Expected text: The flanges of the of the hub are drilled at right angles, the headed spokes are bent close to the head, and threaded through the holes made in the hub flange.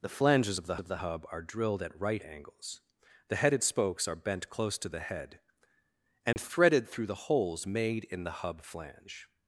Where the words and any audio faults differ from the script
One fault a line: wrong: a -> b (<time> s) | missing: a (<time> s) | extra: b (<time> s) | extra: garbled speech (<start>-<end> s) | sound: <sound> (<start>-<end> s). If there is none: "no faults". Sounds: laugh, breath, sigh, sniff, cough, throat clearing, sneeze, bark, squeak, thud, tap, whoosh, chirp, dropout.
sound: dropout (6.3-6.4 s)